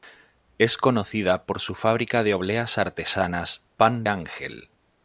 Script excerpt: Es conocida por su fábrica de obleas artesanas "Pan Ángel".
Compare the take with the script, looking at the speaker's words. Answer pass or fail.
pass